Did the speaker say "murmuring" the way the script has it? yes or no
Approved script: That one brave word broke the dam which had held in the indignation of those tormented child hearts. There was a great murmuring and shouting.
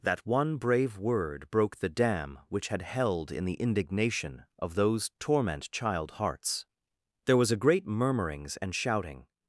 no